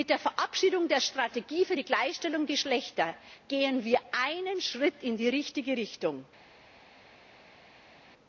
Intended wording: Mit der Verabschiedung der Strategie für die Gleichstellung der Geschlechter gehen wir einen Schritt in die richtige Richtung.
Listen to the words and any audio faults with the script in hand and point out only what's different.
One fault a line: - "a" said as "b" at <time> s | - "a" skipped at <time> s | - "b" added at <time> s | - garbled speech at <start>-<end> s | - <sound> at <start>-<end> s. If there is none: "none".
- "der" skipped at 2.5 s